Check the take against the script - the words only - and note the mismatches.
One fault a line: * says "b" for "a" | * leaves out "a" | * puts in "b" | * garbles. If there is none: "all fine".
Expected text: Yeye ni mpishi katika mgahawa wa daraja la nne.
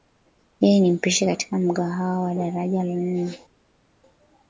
all fine